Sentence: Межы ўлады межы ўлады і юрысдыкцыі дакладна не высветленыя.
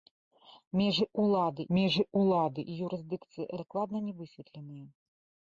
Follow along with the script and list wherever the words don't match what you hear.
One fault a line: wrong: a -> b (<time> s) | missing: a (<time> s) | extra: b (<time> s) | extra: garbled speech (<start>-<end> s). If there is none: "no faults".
no faults